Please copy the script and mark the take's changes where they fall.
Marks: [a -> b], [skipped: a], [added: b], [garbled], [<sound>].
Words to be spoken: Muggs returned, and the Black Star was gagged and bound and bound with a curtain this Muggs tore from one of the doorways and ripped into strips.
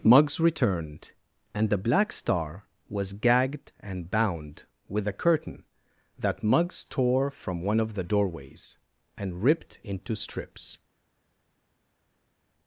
Muggs returned, and the Black Star was gagged and bound [skipped: and bound] with a curtain [this -> that] Muggs tore from one of the doorways and ripped into strips.